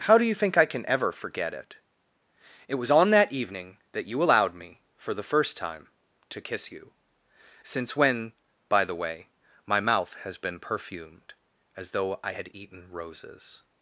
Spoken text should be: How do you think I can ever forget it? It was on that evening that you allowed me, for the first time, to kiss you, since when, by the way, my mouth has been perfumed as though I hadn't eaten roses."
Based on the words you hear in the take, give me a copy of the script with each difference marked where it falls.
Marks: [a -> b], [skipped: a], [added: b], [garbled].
How do you think I can ever forget it? It was on that evening that you allowed me, for the first time, to kiss you, since when, by the way, my mouth has been perfumed as though I [hadn't -> had] eaten roses."